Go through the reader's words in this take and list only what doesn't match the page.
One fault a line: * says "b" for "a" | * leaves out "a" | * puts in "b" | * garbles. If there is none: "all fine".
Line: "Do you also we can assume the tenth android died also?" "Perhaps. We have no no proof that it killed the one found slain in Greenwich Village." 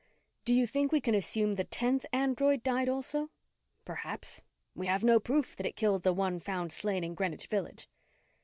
* says "think" for "also"
* leaves out "no"